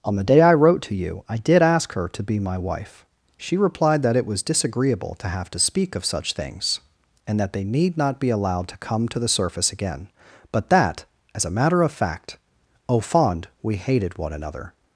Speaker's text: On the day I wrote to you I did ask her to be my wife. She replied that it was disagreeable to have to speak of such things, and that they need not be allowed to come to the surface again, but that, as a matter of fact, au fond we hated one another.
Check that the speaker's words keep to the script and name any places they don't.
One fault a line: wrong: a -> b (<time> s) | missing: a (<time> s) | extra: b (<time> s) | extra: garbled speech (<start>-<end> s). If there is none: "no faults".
no faults